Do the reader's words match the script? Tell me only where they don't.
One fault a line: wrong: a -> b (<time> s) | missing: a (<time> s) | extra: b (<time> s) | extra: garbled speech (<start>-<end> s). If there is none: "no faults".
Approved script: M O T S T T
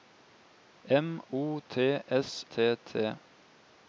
no faults